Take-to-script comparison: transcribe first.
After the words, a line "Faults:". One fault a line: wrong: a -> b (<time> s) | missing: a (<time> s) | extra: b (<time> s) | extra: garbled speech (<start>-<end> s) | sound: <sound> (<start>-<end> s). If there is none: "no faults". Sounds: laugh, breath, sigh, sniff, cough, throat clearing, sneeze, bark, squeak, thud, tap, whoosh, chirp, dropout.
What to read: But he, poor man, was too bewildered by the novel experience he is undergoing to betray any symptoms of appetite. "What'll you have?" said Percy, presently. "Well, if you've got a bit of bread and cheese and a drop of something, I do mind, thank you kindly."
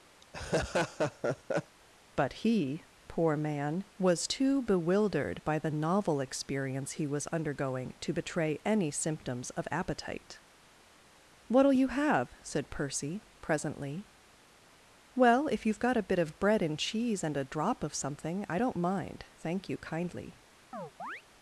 But he, poor man, was too bewildered by the novel experience he was undergoing to betray any symptoms of appetite. "What'll you have?" said Percy, presently. "Well, if you've got a bit of bread and cheese and a drop of something, I don't mind, thank you kindly."
Faults:
sound: laugh (0.2-1.8 s)
wrong: is -> was (7.1 s)
wrong: do -> don't (18.6 s)
sound: chirp (20.7-21.2 s)